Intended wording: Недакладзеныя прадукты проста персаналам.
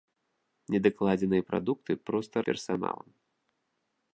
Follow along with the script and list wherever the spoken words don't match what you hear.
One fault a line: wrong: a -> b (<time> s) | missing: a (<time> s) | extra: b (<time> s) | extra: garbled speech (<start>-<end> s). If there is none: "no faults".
no faults